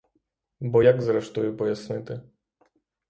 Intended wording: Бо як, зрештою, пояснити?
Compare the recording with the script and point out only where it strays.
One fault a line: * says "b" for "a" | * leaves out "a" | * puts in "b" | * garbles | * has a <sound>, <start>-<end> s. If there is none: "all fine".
all fine